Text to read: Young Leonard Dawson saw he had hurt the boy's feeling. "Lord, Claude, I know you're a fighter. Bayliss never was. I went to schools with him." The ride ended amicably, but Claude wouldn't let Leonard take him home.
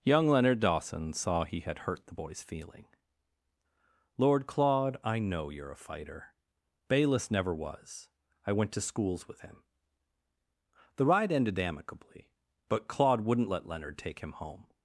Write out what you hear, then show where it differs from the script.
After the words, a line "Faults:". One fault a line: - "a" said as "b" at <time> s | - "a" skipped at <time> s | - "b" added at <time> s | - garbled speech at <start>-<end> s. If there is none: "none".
Young Leonard Dawson saw he had hurt the boy's feeling. "Lord, Claude, I know you're a fighter. Bayliss never was. I went to schools with him." The ride ended amicably, but Claude wouldn't let Leonard take him home.
Faults:
none